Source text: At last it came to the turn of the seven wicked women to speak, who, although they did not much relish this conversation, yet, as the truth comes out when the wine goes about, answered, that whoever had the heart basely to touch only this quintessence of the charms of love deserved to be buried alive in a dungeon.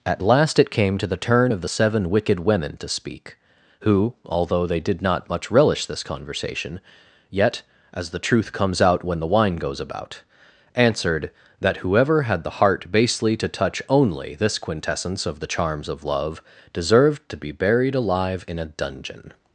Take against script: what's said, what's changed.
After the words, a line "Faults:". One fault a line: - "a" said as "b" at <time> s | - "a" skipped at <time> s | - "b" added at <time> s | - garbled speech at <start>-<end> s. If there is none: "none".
At last it came to the turn of the seven wicked women to speak, who, although they did not much relish this conversation, yet, as the truth comes out when the wine goes about, answered, that whoever had the heart basely to touch only this quintessence of the charms of love deserved to be buried alive in a dungeon.
Faults:
none